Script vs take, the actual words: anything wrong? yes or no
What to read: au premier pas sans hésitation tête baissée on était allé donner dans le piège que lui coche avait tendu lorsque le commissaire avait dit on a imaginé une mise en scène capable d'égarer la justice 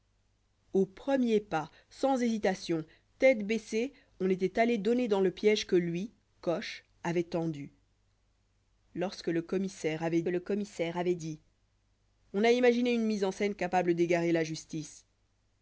yes